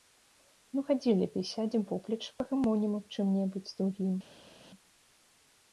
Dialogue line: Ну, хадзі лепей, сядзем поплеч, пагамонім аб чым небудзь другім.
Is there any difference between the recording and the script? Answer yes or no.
no